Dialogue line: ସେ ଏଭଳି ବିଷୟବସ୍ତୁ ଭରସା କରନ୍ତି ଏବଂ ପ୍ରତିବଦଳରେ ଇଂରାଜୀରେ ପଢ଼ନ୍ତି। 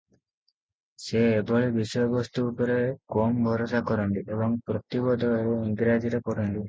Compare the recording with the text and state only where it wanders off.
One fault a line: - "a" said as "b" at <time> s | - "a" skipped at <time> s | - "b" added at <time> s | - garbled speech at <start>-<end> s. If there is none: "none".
- "ଉପରେ କମ" added at 2.5 s